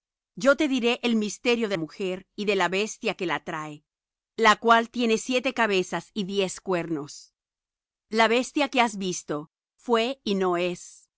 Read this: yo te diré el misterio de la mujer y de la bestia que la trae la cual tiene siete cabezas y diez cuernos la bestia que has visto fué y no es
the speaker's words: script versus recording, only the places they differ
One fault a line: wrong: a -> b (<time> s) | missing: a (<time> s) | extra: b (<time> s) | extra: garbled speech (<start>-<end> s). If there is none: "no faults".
missing: la (1.8 s)